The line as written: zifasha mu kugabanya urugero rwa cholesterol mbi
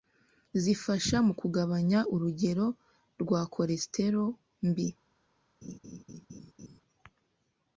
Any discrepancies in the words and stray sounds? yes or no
yes